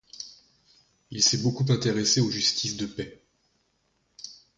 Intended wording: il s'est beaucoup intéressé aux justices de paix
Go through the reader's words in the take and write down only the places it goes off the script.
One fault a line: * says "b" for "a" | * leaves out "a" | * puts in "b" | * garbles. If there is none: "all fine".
all fine